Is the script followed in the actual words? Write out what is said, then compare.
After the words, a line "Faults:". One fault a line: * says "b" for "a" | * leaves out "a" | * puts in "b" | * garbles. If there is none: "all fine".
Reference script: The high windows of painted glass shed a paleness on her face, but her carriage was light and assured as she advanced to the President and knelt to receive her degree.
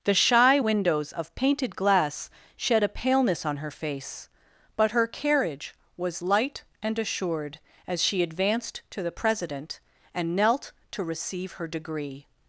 The shy windows of painted glass shed a paleness on her face, but her carriage was light and assured as she advanced to the President and knelt to receive her degree.
Faults:
* says "shy" for "high"